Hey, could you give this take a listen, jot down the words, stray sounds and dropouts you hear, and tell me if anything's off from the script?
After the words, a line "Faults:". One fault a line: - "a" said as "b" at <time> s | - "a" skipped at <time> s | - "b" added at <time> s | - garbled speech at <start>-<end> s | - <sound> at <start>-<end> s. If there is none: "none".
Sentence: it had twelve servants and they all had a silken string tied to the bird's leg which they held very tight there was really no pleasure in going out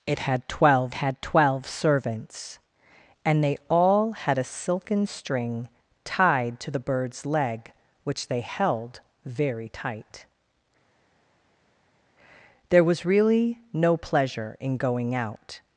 it had twelve had twelve servants and they all had a silken string tied to the bird's leg which they held very tight there was really no pleasure in going out
Faults:
- "had twelve" added at 0.9 s